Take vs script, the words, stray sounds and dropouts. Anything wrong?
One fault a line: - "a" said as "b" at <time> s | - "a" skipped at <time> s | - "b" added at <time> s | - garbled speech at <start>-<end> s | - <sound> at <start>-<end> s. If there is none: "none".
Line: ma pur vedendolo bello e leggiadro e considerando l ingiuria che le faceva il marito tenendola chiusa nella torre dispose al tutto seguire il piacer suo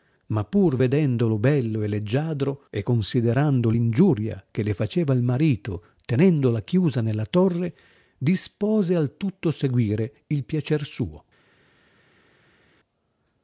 none